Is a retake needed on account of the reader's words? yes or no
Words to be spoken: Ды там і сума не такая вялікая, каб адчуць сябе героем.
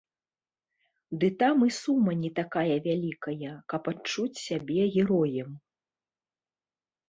no